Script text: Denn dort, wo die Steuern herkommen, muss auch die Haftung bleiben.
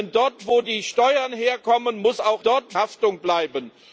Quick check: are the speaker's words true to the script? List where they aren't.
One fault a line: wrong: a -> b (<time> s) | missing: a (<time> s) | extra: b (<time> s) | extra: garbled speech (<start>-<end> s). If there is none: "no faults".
wrong: die -> dort (2.4 s)